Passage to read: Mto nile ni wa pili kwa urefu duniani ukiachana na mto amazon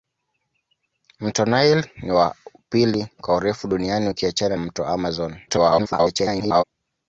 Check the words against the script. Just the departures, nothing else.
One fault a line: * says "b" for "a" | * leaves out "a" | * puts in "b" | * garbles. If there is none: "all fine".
* leaves out "na"
* garbles